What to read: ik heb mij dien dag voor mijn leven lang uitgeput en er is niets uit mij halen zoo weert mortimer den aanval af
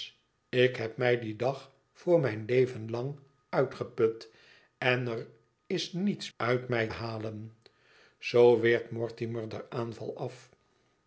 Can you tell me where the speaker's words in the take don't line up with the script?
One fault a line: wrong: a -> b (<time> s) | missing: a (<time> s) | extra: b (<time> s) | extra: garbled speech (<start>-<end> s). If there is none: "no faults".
no faults